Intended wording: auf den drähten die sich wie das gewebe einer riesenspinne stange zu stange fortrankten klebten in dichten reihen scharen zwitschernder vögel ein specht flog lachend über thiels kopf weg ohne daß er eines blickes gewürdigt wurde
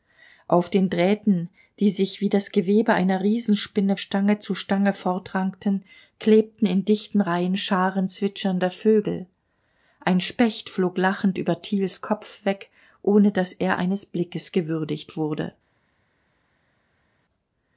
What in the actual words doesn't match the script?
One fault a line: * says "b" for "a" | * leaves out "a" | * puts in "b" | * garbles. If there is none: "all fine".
all fine